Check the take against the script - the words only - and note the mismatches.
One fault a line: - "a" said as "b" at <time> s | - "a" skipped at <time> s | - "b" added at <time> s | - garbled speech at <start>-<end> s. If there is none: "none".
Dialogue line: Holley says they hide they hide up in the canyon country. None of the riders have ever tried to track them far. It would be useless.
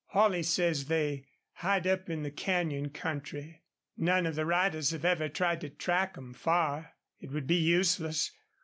- "they hide" skipped at 1.9 s